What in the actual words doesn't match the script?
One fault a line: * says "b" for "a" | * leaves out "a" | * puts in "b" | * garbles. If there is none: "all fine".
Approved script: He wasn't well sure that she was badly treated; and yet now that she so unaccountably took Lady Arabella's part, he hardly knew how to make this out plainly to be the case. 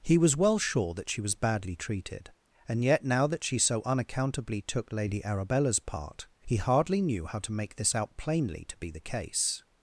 * says "was" for "wasn't"